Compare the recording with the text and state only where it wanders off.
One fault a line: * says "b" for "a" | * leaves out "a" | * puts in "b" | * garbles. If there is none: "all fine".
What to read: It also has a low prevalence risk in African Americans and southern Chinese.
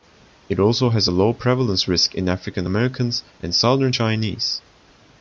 all fine